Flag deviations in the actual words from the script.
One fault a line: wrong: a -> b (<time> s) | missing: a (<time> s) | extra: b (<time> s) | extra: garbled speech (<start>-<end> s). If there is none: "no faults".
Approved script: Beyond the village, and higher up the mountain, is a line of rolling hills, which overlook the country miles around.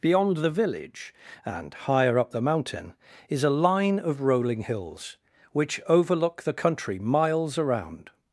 no faults